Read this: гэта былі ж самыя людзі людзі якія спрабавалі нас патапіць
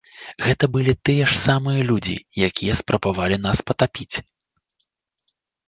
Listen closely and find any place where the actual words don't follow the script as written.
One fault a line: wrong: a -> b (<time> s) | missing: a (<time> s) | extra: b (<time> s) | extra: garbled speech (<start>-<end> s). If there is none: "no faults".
extra: тыя (1.1 s)
missing: людзі (2.2 s)